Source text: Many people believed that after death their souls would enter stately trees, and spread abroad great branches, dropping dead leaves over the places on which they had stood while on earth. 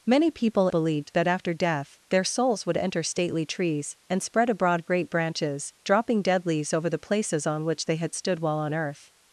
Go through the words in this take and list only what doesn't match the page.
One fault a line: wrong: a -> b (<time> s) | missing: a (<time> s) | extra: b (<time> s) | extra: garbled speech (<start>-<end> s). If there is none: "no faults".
no faults